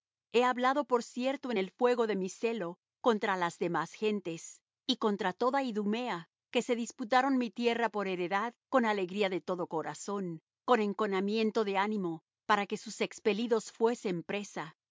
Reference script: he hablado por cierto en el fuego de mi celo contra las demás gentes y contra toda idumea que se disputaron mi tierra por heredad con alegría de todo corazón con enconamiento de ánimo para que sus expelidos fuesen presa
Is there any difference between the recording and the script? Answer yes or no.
no